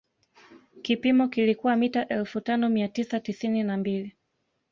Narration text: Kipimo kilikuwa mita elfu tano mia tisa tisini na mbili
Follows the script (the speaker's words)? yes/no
yes